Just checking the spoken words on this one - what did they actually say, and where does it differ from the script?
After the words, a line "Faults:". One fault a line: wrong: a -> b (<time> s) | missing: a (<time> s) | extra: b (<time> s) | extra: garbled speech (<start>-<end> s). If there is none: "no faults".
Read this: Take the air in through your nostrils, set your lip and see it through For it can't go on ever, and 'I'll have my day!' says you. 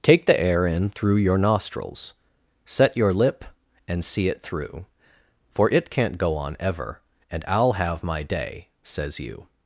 Take the air in through your nostrils, set your lip and see it through For it can't go on ever, and 'I'll have my day!' says you.
Faults:
no faults